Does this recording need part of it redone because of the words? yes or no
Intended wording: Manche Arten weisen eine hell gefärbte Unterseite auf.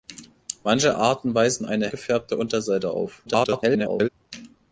yes